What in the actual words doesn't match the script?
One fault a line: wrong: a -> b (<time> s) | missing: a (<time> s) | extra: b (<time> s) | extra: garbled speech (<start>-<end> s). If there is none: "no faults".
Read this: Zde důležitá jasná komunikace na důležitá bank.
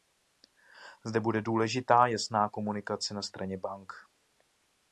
extra: bude (1.2 s)
wrong: důležitá -> straně (3.2 s)